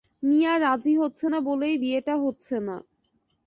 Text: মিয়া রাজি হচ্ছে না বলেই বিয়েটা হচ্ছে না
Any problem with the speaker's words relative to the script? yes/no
no